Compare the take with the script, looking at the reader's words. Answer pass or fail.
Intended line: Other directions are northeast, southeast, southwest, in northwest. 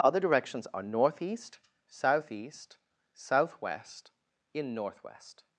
pass